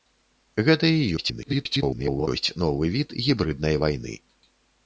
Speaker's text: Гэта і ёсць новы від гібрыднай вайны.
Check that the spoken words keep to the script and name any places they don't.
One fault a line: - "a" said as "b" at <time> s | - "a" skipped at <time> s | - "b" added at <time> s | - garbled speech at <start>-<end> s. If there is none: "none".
- garbled speech at 1.2-2.3 s